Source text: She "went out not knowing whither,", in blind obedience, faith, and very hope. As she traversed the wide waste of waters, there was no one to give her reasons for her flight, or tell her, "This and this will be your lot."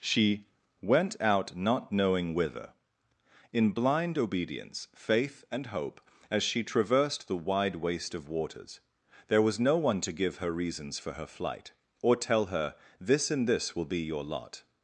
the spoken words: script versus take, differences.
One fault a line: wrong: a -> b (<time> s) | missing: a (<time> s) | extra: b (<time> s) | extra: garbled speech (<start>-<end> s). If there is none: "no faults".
missing: very (5.7 s)